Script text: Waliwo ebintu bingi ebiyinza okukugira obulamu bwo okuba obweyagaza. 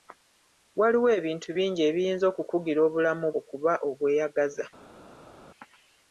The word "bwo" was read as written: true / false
false